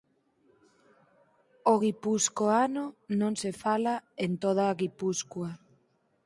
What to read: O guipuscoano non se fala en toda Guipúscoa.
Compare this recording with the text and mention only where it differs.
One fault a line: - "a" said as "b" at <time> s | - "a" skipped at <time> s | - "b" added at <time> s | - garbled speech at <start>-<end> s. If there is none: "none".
none